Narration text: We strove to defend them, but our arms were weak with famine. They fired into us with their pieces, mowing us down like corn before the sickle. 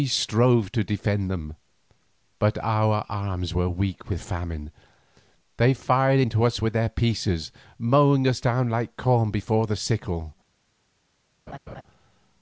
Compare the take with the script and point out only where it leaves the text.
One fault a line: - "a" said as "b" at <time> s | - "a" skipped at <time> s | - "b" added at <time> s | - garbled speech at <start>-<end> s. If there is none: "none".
none